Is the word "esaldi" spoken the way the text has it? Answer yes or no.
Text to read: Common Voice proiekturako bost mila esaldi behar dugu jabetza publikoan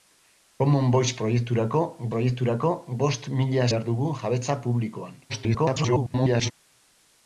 no